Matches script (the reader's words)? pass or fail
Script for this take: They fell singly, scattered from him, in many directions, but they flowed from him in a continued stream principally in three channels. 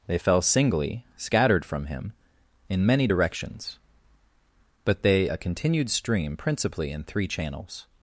fail